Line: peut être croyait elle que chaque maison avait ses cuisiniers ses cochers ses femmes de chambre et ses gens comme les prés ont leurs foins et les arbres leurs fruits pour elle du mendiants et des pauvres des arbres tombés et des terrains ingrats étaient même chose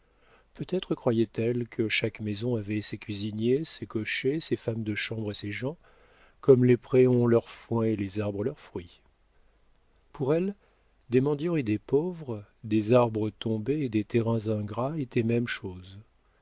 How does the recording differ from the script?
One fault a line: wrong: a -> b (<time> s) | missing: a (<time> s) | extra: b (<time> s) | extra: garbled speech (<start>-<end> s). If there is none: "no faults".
wrong: du -> des (11.1 s)